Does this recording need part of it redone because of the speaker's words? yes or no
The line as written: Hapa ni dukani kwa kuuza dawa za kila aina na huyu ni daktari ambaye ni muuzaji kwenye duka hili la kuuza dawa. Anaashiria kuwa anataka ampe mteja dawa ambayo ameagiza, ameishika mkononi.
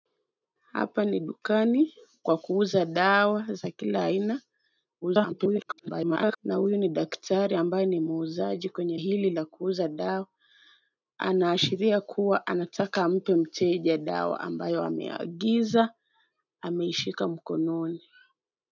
yes